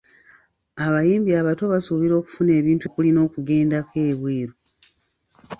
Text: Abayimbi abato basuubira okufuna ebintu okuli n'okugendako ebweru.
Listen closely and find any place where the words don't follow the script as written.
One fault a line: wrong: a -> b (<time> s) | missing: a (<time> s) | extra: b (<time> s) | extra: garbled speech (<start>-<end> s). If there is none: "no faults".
no faults